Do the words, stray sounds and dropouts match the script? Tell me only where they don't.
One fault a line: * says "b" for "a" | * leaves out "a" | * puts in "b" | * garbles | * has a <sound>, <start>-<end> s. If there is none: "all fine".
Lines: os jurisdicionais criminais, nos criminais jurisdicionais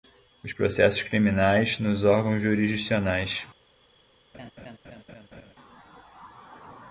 * says "processos" for "jurisdicionais"
* says "órgãos" for "criminais"
* has a laugh, 4.3-5.5 s